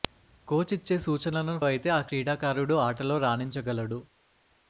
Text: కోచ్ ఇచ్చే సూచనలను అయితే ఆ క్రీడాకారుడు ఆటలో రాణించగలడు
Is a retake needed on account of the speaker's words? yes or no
no